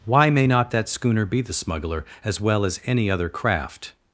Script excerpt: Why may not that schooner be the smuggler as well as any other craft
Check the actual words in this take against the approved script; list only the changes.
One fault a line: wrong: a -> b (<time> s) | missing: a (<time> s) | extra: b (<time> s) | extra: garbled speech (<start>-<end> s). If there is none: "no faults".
no faults